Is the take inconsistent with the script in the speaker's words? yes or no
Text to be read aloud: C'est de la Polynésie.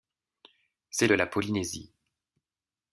no